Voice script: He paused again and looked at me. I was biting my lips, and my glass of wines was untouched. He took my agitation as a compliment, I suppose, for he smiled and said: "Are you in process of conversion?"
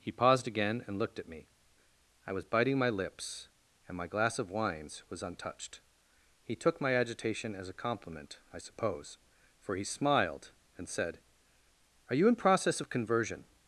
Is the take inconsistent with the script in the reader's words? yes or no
no